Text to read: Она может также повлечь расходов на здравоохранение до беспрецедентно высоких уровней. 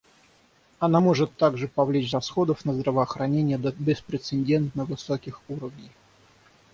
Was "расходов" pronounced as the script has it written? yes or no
yes